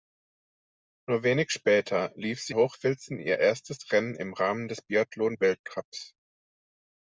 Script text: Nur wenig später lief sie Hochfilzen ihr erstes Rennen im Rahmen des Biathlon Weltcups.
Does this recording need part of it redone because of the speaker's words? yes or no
no